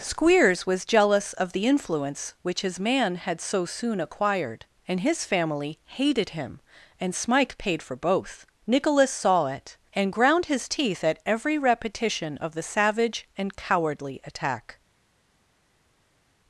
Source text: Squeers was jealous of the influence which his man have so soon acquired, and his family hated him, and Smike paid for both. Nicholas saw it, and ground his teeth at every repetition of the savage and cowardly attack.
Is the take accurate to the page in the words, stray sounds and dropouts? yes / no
no